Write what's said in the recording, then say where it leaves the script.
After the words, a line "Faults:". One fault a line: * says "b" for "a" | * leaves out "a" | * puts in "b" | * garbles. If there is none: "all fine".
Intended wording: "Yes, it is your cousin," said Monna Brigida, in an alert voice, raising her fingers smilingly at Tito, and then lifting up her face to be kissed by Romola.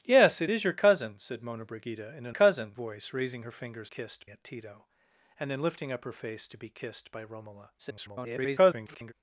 "Yes, it is your cousin," said Monna Brigida, in an cousin voice, raising her fingers kissed at Tito, and then lifting up her face to be kissed by Romola. [garbled]
Faults:
* says "cousin" for "alert"
* says "kissed" for "smilingly"
* garbles